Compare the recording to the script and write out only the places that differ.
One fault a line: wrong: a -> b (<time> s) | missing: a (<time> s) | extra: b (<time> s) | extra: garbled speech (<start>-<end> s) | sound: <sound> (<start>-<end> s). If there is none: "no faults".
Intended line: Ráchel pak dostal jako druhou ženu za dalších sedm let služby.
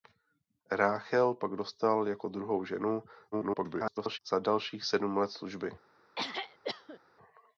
extra: garbled speech (3.3-4.2 s)
sound: throat clearing (6.1-7.0 s)